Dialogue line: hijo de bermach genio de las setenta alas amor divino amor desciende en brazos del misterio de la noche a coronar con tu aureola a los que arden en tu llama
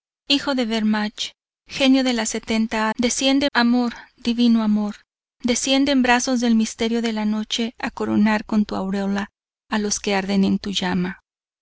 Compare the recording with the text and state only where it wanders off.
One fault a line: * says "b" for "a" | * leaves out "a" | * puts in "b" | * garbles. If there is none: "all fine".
* says "desciende" for "alas"